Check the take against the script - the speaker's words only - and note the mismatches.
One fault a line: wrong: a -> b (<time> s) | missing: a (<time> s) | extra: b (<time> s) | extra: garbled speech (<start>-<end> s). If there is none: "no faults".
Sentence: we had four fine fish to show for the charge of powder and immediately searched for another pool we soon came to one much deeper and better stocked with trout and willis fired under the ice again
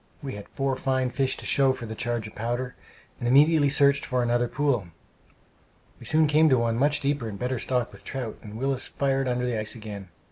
no faults